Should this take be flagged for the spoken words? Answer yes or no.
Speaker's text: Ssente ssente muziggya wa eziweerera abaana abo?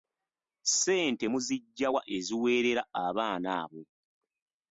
yes